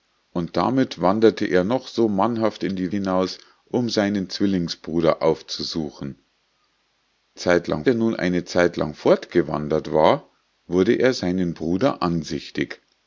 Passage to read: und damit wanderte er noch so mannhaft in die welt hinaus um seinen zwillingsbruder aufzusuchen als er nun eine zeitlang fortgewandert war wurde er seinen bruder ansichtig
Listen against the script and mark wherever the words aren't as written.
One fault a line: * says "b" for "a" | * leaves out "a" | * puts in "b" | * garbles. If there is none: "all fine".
* leaves out "welt"
* says "zeitlang" for "als"